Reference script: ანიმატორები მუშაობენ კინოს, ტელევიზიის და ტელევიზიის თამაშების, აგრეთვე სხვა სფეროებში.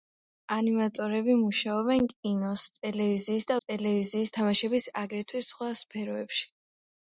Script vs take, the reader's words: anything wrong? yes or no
no